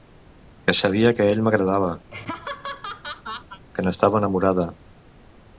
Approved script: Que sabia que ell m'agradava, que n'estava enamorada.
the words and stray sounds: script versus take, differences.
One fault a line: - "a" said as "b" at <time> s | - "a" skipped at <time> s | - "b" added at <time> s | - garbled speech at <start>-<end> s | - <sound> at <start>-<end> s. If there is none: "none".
- laugh at 2.1-3.6 s